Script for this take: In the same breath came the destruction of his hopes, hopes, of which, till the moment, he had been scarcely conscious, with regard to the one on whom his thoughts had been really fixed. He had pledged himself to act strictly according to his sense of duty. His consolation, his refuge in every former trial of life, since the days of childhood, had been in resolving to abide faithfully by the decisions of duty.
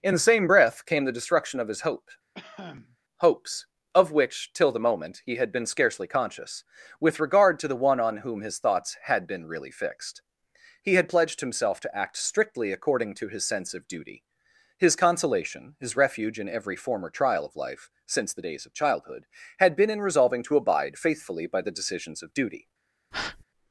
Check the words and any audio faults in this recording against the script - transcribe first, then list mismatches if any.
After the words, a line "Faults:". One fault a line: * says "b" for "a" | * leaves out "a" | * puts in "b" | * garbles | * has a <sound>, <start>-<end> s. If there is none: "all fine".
In the same breath came the destruction of his hope, hopes, of which, till the moment, he had been scarcely conscious, with regard to the one on whom his thoughts had been really fixed. He had pledged himself to act strictly according to his sense of duty. His consolation, his refuge in every former trial of life, since the days of childhood, had been in resolving to abide faithfully by the decisions of duty.
Faults:
* says "hope" for "hopes"
* has a cough, 2.3-3.0 s
* has a breath, 23.1-23.4 s